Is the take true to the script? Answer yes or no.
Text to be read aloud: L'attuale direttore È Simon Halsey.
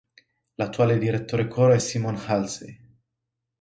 no